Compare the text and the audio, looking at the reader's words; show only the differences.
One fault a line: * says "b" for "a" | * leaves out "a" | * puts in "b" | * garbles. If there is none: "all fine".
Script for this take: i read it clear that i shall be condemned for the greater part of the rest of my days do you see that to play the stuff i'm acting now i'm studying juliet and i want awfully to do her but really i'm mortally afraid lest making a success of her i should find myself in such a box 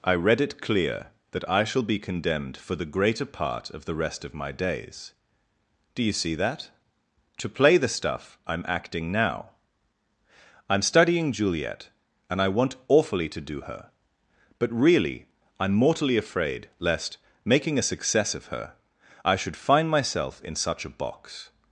all fine